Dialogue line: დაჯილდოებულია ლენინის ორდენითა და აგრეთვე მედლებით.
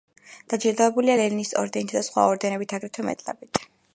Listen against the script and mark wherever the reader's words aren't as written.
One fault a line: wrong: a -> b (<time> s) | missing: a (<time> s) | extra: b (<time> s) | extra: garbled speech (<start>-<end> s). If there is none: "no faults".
extra: სხვა ორდენებით (2.1 s)